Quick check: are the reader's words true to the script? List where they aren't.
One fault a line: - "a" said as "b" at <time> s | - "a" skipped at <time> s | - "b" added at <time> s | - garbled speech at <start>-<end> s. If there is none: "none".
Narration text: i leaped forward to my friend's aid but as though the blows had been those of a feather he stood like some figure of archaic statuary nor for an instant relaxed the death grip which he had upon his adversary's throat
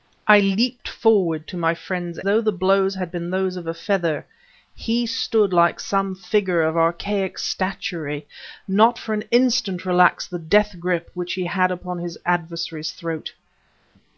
- "aid but as" skipped at 2.2 s